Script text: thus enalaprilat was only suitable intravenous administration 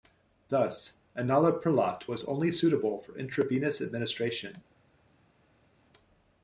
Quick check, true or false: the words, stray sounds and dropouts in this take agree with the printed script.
false